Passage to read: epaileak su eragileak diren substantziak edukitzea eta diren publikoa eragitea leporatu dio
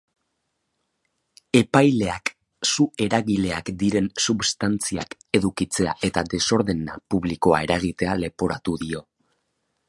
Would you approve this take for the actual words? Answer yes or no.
no